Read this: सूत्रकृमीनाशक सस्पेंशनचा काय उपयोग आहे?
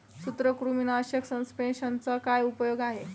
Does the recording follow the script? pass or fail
pass